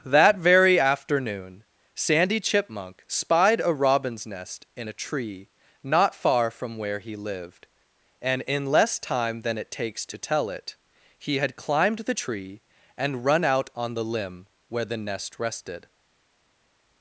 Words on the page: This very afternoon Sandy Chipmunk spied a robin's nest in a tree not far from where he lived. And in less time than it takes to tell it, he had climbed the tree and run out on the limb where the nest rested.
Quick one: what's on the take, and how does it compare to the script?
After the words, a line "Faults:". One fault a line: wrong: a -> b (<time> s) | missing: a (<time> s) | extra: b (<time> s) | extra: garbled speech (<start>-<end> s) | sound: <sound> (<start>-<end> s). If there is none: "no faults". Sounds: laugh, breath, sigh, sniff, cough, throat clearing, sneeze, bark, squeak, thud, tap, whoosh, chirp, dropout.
That very afternoon Sandy Chipmunk spied a robin's nest in a tree not far from where he lived. And in less time than it takes to tell it, he had climbed the tree and run out on the limb where the nest rested.
Faults:
wrong: This -> That (0.1 s)